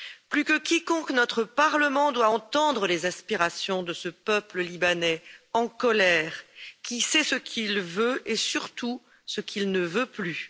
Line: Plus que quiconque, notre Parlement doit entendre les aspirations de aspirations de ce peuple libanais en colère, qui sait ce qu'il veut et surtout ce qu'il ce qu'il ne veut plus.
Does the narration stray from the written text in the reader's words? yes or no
yes